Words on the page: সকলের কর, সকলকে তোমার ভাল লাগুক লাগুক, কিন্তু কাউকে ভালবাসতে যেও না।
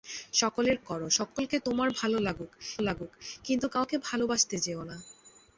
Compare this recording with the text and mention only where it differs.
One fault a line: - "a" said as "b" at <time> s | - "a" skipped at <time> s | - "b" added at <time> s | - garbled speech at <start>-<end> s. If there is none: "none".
none